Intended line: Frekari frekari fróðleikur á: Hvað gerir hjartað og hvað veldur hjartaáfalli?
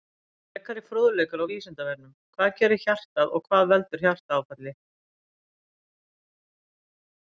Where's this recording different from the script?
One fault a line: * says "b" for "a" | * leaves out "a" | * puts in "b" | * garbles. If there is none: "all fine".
* leaves out "frekari"
* puts in "Vísindavefnum"